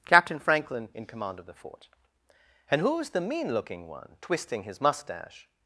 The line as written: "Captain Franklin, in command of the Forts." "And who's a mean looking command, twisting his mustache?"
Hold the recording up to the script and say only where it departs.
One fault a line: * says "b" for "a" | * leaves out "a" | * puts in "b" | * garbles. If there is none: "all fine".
* says "Fort" for "Forts"
* says "the" for "a"
* says "one" for "command"